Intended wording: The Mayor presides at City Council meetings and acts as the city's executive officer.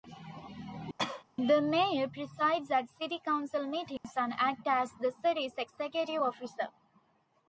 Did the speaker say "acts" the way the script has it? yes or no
yes